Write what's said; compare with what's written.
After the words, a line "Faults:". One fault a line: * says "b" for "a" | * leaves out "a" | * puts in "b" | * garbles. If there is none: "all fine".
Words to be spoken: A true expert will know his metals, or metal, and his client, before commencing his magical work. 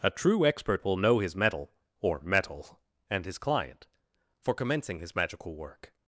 A true expert will know his metal, or metal, and his client, for commencing his magical work.
Faults:
* says "metal" for "metals"
* says "for" for "before"